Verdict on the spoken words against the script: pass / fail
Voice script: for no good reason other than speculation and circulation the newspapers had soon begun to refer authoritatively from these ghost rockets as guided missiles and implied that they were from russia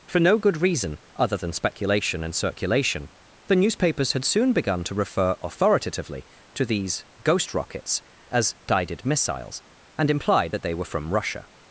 fail